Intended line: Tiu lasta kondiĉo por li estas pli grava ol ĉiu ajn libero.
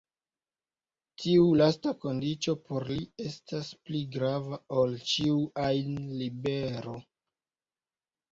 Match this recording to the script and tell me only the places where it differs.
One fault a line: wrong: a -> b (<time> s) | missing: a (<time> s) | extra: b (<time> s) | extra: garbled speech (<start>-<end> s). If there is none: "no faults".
no faults